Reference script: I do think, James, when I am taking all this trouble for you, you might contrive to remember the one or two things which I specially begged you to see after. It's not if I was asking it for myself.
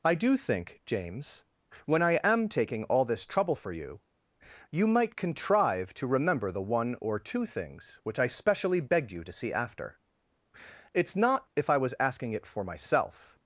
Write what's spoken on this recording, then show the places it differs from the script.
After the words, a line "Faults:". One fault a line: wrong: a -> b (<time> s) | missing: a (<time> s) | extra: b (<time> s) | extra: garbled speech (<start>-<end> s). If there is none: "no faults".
I do think, James, when I am taking all this trouble for you, you might contrive to remember the one or two things which I specially begged you to see after. It's not if I was asking it for myself.
Faults:
no faults